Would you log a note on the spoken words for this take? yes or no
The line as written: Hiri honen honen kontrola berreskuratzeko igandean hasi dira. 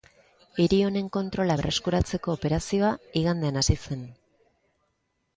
yes